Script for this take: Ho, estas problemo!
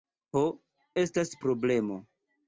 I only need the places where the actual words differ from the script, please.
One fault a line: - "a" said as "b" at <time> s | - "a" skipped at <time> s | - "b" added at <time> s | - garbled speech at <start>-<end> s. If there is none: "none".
none